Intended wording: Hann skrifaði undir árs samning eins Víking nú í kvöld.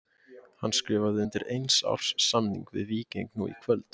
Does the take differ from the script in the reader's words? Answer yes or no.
yes